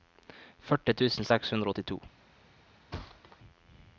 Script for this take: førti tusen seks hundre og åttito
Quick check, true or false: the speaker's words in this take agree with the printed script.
true